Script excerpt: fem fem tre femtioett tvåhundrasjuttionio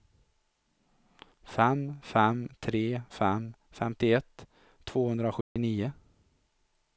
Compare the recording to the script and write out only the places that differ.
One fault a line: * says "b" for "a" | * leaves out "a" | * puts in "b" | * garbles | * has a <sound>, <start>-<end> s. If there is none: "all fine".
* puts in "fem"
* has a dropout, 5.4-5.6 s